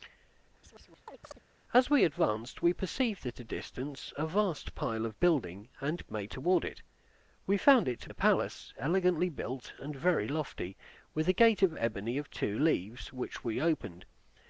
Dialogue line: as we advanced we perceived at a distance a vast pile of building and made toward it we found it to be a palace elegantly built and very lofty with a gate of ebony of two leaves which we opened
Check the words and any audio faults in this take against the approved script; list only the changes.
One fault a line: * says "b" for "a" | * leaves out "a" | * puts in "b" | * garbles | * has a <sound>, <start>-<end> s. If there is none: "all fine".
* has a chirp, 0.6-1.4 s
* leaves out "be"